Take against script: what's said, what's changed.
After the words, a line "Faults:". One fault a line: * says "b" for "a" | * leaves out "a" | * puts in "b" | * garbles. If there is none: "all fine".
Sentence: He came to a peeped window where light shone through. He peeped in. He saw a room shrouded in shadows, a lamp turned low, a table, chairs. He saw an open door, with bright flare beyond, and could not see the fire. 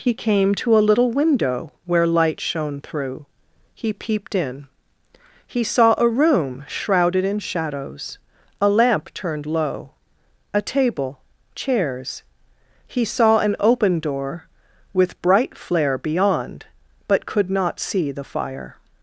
He came to a little window where light shone through. He peeped in. He saw a room shrouded in shadows, a lamp turned low, a table, chairs. He saw an open door, with bright flare beyond, but could not see the fire.
Faults:
* says "little" for "peeped"
* says "but" for "and"